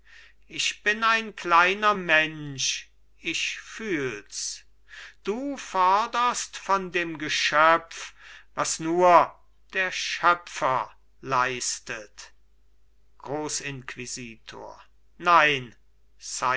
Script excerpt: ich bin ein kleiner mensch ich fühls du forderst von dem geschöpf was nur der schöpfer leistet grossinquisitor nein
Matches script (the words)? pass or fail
pass